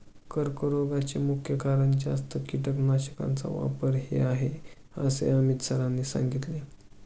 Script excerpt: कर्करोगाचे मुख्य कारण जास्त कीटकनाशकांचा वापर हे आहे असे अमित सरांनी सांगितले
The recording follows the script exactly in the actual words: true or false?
true